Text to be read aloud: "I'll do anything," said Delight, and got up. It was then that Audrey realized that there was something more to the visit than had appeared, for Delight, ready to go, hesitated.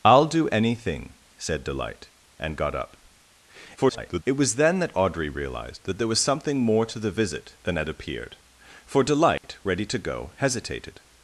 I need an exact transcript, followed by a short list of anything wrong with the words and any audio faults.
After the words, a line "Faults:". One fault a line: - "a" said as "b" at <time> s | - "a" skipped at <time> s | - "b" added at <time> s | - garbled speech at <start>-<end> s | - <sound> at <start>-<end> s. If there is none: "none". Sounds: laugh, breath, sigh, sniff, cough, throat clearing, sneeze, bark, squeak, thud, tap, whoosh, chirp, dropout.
"I'll do anything," said Delight, and got up. [garbled] It was then that Audrey realized that there was something more to the visit than had appeared, for Delight, ready to go, hesitated.
Faults:
- garbled speech at 3.8-4.2 s
- dropout at 9.4-9.4 s